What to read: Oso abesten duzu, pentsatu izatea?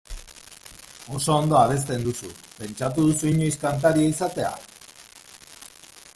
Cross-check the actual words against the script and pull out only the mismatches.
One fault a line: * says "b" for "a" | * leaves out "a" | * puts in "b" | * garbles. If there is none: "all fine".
* puts in "ondo"
* puts in "duzu inoiz kantaria"